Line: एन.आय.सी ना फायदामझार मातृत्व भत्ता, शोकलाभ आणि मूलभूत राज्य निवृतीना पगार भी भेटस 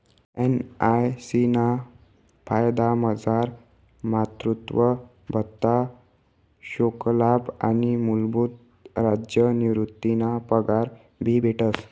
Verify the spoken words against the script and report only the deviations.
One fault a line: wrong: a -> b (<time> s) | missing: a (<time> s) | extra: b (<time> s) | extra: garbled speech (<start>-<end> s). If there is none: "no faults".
no faults